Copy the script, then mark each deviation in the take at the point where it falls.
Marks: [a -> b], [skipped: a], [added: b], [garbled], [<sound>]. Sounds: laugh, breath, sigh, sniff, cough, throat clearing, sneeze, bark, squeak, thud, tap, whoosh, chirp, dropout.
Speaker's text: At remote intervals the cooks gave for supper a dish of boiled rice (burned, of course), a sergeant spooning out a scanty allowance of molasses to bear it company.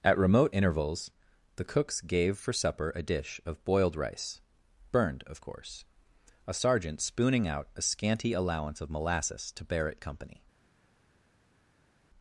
At remote intervals the cooks gave for supper a dish of boiled rice (burned, of course), a sergeant spooning out a scanty allowance of molasses to bear it company.